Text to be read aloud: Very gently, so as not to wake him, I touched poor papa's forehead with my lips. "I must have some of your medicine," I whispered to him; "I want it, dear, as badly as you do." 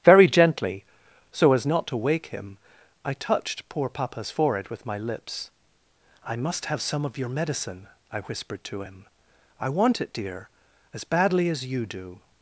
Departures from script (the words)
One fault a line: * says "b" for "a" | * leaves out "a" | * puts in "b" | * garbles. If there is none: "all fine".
all fine